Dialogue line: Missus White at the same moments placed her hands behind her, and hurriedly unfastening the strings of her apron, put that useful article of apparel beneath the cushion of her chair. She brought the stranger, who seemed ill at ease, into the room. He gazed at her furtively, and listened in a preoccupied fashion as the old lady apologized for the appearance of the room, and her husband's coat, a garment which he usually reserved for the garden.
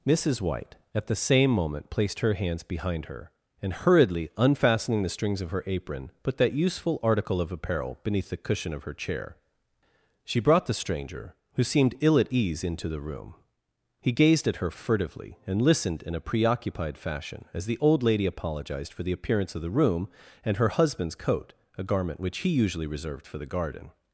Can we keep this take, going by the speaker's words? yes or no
no